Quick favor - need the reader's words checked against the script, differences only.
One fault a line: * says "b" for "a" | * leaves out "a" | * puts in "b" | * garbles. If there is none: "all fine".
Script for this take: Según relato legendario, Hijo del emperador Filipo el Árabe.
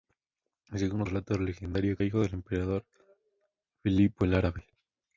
all fine